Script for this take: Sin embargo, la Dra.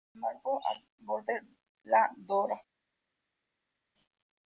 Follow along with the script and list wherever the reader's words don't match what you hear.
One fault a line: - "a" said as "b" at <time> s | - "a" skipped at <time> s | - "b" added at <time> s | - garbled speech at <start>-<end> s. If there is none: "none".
- "al volver" added at 0.6 s